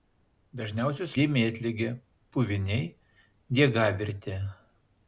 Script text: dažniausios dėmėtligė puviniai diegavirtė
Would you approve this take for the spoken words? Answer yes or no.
yes